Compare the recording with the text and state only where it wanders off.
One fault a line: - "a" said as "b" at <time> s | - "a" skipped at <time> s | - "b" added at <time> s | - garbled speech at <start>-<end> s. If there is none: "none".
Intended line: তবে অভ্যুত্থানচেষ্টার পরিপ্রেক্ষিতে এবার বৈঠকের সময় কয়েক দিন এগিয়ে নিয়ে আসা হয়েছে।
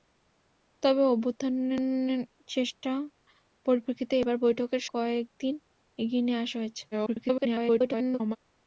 - "সময়" skipped at 4.8 s
- garbled speech at 6.9-8.4 s